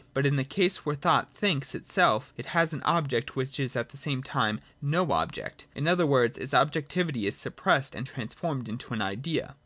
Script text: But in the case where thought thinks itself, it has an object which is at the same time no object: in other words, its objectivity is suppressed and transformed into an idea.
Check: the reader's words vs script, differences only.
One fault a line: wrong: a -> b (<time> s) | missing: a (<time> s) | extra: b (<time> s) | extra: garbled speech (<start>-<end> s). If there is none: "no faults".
no faults